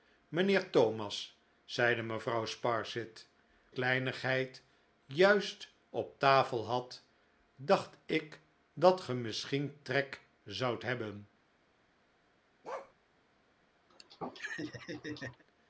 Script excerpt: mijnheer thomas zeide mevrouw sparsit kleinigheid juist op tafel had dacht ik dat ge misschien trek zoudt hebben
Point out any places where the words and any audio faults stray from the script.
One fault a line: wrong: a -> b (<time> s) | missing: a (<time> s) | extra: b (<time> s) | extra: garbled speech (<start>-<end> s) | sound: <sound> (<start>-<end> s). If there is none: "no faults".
sound: bark (12.6-12.9 s)
sound: laugh (13.9-15.4 s)